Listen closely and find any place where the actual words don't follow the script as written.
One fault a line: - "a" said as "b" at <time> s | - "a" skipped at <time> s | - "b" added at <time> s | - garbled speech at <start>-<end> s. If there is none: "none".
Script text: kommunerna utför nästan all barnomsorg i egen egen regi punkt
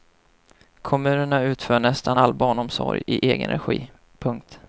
- "egen" skipped at 3.5 s